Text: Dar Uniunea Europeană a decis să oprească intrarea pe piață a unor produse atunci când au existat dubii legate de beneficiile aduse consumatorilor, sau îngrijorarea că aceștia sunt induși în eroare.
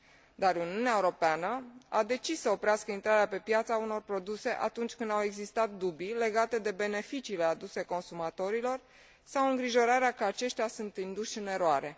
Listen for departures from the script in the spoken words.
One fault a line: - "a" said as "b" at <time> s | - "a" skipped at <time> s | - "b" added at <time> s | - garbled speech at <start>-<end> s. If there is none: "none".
none